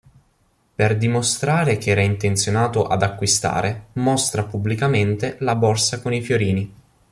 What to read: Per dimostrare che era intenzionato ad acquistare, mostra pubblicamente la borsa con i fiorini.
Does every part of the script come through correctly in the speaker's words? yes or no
yes